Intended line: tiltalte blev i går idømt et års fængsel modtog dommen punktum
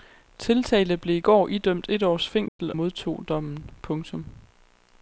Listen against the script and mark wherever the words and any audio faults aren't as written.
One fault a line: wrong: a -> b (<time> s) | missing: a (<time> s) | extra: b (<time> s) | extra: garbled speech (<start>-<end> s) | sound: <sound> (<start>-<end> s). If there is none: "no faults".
sound: dropout (2.5-2.6 s)